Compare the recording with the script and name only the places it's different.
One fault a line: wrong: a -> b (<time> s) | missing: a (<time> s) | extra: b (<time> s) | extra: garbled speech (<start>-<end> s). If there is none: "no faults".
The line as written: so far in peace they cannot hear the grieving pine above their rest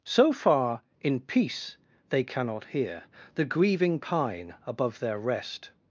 no faults